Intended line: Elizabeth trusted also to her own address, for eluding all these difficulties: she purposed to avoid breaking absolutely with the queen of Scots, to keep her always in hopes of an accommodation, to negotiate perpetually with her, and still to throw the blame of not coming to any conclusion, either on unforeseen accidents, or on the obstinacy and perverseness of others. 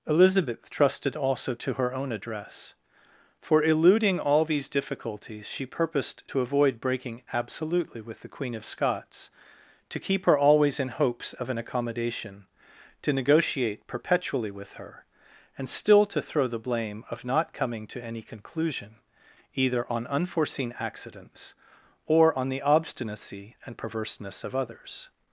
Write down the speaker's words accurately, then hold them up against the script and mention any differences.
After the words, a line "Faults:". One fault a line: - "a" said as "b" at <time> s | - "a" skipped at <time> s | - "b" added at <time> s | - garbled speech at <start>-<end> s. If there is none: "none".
Elizabeth trusted also to her own address, for eluding all these difficulties: she purposed to avoid breaking absolutely with the queen of Scots, to keep her always in hopes of an accommodation, to negotiate perpetually with her, and still to throw the blame of not coming to any conclusion, either on unforeseen accidents, or on the obstinacy and perverseness of others.
Faults:
none